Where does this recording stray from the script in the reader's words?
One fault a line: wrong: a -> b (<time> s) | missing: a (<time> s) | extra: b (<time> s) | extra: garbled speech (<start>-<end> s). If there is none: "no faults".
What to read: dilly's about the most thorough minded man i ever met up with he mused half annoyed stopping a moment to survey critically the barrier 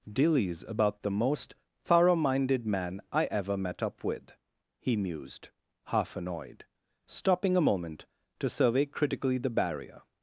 no faults